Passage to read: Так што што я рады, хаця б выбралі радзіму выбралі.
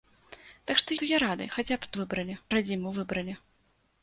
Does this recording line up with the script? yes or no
yes